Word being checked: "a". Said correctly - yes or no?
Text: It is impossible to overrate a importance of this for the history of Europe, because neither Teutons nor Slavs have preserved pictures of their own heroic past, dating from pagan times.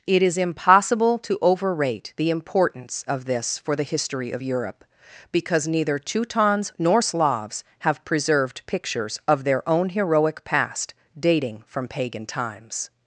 no